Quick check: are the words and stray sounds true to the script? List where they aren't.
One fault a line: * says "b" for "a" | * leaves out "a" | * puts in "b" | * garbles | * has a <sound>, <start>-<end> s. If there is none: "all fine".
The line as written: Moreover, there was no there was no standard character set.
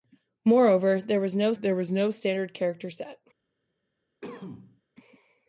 * has a cough, 4.2-4.8 s